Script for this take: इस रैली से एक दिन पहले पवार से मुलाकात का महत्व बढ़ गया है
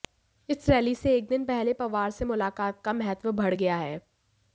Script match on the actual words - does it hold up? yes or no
yes